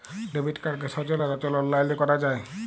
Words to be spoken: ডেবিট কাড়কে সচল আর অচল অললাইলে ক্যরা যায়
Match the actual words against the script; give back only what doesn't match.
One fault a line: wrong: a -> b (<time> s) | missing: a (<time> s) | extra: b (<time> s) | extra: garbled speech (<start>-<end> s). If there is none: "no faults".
no faults